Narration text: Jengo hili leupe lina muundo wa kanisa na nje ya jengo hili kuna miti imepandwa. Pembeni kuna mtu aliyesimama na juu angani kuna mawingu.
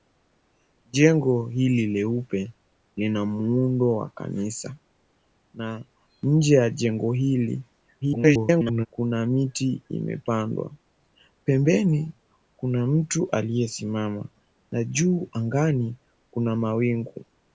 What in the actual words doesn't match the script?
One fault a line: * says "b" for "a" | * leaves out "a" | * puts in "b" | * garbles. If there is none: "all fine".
* garbles